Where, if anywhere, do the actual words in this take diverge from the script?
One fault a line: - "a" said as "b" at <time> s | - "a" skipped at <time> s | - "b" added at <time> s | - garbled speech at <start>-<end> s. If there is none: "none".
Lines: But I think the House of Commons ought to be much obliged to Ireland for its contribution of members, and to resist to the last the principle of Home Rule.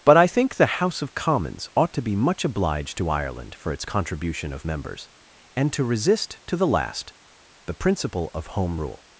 none